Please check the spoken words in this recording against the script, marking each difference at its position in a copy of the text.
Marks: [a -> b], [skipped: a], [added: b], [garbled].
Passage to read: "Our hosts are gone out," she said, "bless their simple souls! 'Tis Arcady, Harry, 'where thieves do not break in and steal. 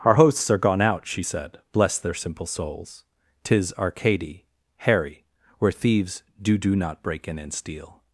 "Our hosts are gone out," she said, "bless their simple souls! 'Tis Arcady, Harry, 'where thieves do [added: do] not break in and steal.